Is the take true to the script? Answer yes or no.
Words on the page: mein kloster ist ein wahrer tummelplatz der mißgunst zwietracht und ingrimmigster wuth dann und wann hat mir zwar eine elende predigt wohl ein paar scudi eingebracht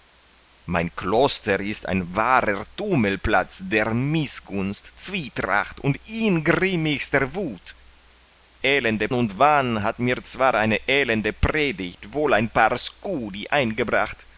no